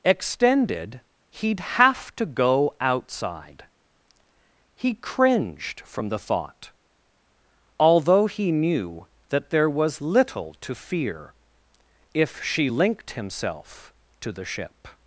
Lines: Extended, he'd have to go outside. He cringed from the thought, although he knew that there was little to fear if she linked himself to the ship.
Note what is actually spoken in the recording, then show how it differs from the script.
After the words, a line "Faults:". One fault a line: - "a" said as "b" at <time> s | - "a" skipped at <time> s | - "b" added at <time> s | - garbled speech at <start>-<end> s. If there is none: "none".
Extended, he'd have to go outside. He cringed from the thought, although he knew that there was little to fear if she linked himself to the ship.
Faults:
none